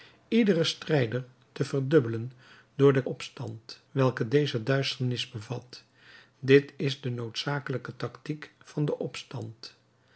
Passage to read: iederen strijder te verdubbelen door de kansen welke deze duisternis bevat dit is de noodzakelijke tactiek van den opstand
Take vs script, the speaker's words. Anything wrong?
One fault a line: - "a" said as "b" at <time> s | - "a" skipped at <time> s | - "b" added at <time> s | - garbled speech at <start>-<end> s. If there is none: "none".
- "kansen" said as "opstand" at 3.0 s